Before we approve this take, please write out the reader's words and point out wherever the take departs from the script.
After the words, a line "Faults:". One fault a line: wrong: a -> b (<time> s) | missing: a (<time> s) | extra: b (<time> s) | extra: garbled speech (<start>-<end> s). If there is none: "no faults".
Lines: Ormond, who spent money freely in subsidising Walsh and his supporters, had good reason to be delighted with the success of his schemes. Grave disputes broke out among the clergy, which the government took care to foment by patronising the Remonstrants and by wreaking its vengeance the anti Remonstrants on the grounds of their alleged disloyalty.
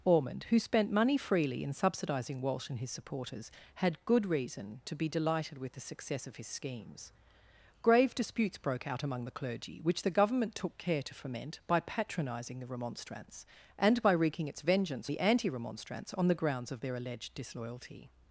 Ormond, who spent money freely in subsidising Walsh and his supporters, had good reason to be delighted with the success of his schemes. Grave disputes broke out among the clergy, which the government took care to foment by patronising the Remonstrants and by wreaking its vengeance the anti Remonstrants on the grounds of their alleged disloyalty.
Faults:
no faults